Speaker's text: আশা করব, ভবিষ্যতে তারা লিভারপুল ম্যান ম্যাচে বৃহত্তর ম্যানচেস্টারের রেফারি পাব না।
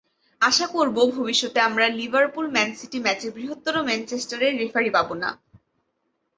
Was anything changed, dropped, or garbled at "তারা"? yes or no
yes